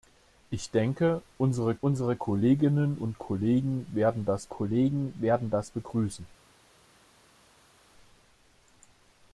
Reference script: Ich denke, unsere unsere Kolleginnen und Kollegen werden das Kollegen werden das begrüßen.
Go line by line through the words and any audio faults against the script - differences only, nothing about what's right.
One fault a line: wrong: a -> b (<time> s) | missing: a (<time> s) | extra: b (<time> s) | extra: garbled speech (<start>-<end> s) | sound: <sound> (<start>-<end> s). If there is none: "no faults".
no faults